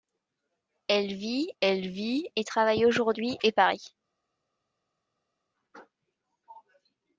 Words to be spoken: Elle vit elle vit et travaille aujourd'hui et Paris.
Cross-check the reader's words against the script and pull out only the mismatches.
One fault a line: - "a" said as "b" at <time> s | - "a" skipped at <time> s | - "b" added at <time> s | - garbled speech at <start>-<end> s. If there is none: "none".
none